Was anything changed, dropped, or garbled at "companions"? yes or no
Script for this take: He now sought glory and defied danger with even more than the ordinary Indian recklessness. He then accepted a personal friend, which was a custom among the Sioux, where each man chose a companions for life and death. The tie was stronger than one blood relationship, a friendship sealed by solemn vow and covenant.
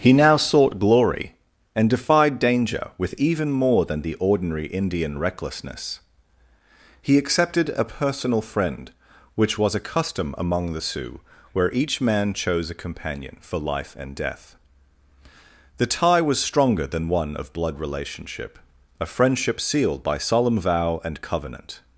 yes